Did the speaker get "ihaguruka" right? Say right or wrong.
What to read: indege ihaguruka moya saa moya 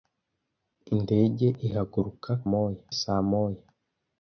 right